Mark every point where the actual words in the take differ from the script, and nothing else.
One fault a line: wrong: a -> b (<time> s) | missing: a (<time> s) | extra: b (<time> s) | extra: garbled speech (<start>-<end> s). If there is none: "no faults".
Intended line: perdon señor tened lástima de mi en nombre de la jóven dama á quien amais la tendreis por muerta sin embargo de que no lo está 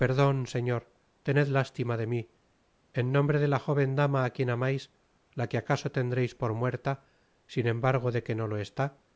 extra: que acaso (5.5 s)